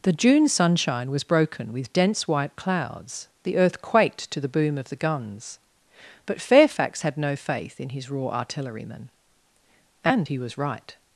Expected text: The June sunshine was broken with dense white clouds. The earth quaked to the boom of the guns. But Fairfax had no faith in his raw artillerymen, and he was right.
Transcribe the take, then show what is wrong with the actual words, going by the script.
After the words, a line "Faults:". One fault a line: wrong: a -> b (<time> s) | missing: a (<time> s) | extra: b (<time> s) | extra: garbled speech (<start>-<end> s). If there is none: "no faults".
The June sunshine was broken with dense white clouds. The earth quaked to the boom of the guns. But Fairfax had no faith in his raw artillerymen, and he was right.
Faults:
no faults